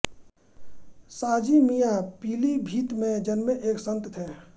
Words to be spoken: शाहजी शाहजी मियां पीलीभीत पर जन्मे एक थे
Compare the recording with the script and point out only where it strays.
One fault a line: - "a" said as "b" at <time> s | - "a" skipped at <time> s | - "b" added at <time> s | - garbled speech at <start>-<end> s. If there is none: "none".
- "शाहजी" skipped at 1.6 s
- "पर" said as "में" at 3.0 s
- "संत" added at 3.9 s